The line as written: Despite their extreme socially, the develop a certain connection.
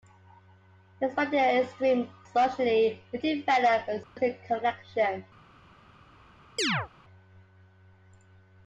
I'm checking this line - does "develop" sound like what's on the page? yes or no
yes